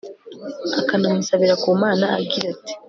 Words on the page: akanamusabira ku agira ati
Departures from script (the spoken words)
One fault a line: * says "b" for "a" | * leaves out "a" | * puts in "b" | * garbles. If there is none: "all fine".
* puts in "mana"